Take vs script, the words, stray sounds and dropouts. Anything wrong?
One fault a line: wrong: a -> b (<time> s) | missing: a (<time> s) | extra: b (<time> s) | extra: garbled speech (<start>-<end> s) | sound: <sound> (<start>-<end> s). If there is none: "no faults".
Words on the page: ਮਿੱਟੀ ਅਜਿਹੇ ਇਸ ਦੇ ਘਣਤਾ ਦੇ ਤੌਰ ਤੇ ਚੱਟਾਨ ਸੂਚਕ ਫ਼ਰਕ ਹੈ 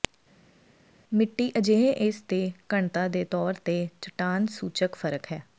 no faults